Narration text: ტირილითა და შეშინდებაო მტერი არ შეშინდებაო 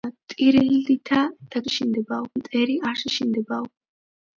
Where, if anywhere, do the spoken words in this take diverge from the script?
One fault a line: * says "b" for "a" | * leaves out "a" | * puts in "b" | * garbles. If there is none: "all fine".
all fine